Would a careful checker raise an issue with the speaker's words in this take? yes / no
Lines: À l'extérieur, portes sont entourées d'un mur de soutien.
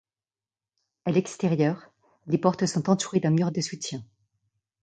yes